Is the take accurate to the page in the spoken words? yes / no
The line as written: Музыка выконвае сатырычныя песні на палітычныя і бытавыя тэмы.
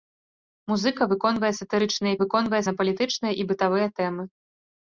no